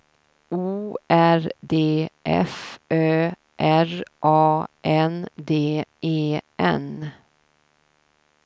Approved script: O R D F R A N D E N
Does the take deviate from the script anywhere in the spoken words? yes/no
yes